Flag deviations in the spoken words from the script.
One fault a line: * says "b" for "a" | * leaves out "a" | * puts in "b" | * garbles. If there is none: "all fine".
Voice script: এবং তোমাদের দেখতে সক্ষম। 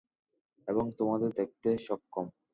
all fine